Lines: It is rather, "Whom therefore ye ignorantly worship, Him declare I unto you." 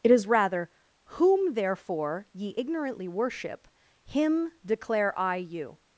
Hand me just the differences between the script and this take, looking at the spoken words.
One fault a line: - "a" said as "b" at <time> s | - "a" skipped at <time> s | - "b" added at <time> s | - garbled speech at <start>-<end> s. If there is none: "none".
- "unto" skipped at 5.3 s